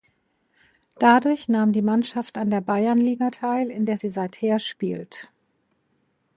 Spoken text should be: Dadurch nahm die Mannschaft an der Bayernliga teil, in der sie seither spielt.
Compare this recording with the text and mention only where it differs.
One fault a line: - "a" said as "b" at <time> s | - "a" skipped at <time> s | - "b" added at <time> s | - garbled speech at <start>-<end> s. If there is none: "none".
none